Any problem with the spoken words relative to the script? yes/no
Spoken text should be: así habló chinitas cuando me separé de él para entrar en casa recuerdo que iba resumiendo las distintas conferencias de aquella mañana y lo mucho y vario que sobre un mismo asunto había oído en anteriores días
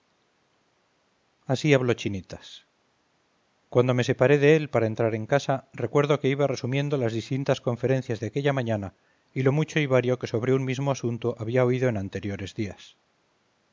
no